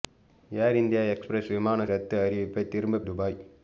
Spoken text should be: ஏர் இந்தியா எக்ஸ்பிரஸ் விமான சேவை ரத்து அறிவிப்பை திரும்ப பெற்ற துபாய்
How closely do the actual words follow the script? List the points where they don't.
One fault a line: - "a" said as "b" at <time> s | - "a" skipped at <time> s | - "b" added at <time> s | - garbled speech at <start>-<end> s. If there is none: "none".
- "சேவை" skipped at 1.9 s
- "பெற்ற" skipped at 3.0 s